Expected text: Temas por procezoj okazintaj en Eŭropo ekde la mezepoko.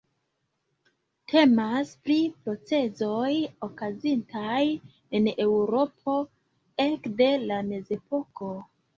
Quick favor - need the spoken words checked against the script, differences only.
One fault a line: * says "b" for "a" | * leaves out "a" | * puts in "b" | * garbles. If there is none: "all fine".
* says "pri" for "por"